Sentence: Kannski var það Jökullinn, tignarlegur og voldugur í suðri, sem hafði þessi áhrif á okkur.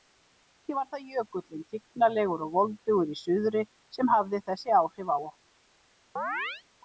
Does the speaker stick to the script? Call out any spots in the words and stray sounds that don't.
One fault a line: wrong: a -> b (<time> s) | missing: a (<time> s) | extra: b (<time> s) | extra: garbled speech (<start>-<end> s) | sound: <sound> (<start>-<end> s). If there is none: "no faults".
sound: chirp (6.2-6.6 s)